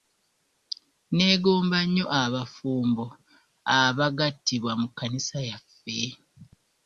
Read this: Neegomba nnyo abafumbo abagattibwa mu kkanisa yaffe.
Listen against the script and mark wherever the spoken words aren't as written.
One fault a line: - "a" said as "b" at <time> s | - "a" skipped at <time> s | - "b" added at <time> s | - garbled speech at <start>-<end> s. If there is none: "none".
none